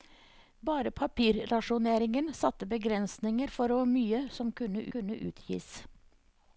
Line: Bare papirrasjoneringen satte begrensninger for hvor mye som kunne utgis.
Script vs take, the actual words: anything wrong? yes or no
yes